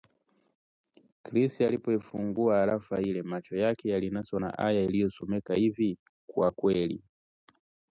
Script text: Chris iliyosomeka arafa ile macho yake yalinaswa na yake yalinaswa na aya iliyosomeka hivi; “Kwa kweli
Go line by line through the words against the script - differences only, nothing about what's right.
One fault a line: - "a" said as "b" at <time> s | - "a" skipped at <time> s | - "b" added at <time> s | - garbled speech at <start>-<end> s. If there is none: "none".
- "iliyosomeka" said as "alipoifungua" at 1.6 s
- "yake yalinaswa na" skipped at 4.6 s